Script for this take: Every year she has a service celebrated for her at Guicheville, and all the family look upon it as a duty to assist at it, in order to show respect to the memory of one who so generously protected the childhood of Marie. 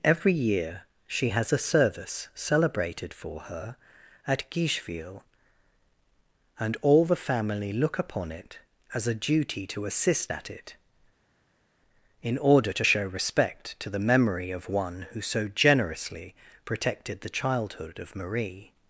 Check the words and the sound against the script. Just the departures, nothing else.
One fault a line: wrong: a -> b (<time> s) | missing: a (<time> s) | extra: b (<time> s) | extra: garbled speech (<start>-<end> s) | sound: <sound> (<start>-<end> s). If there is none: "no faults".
no faults